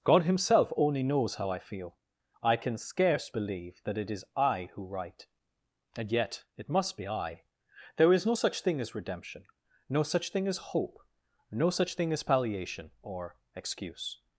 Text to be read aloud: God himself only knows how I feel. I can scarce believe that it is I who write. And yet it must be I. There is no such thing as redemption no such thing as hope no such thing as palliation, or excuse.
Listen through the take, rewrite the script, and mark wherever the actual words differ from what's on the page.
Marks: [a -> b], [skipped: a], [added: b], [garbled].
God himself only knows how I feel. I can scarce believe that it is I who write. And yet it must be I. There is no such thing as redemption no such thing as hope no such thing as palliation, or excuse.